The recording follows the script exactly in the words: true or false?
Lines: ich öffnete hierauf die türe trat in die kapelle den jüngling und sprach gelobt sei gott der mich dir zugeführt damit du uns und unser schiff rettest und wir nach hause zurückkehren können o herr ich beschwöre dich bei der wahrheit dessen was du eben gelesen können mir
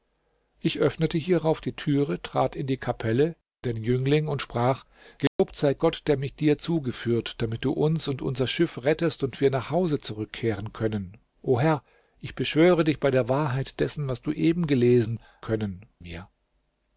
true